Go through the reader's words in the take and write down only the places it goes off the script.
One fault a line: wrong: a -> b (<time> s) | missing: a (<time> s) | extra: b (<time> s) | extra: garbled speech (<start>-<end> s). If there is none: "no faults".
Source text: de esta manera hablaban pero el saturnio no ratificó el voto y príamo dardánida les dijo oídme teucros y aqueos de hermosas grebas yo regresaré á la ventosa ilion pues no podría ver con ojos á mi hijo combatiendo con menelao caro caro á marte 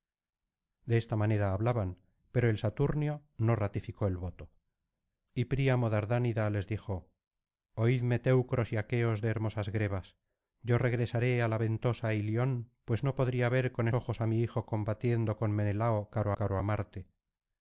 no faults